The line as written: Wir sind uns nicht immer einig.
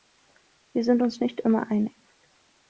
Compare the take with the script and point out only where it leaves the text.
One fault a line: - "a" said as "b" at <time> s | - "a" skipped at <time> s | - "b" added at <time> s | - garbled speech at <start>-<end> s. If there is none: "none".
none